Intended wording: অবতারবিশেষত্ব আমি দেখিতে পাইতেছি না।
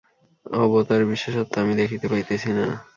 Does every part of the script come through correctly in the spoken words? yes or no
yes